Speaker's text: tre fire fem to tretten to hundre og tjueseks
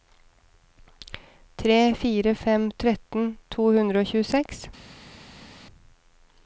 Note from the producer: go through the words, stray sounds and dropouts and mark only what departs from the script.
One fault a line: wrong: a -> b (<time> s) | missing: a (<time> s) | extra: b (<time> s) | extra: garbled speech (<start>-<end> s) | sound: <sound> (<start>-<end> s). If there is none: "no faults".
missing: to (2.6 s)